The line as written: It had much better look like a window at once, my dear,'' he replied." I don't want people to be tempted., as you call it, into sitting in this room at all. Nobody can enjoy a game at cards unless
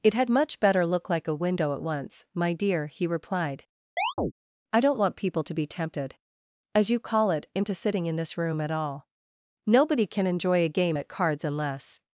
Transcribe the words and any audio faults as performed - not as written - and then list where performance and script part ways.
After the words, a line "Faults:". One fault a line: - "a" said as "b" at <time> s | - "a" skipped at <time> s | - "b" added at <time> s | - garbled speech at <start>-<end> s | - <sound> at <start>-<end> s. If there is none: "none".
It had much better look like a window at once, my dear,'' he replied." I don't want people to be tempted., as you call it, into sitting in this room at all. Nobody can enjoy a game at cards unless
Faults:
- chirp at 4.0-4.3 s